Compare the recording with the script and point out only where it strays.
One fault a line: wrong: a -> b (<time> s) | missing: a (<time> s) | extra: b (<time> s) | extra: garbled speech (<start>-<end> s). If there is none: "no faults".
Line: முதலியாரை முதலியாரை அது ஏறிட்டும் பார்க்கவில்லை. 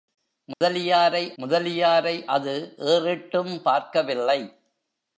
no faults